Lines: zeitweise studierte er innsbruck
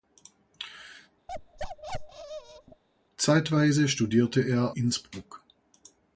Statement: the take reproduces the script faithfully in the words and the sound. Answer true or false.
false